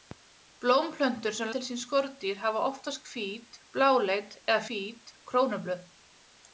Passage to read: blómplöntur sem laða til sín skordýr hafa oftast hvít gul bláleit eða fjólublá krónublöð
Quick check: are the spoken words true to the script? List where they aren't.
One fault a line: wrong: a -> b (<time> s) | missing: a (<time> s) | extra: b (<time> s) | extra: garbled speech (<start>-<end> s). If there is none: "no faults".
missing: laða (1.5 s)
missing: gul (3.6 s)
wrong: fjólublá -> hvít (4.7 s)